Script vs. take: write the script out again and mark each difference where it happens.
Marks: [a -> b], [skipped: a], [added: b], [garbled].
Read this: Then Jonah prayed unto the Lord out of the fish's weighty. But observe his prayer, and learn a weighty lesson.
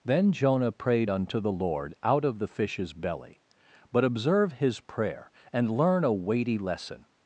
Then Jonah prayed unto the Lord out of the fish's [weighty. -> belly] But observe his prayer, and learn a weighty lesson.